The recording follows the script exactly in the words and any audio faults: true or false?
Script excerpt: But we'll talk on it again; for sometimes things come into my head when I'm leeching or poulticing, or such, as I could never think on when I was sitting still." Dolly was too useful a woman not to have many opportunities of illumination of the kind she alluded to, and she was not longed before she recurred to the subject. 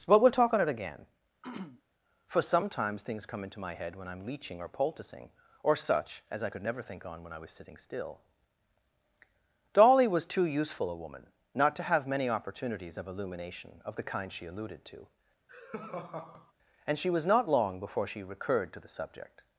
false